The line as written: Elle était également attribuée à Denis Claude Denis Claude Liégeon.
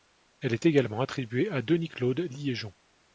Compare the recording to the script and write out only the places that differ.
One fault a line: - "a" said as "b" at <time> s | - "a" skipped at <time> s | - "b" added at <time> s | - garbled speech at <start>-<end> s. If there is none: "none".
- "était" said as "est" at 0.5 s
- "Denis Claude" skipped at 2.2 s